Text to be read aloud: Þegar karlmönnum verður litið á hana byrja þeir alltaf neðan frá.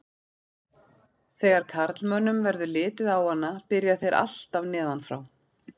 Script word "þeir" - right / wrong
right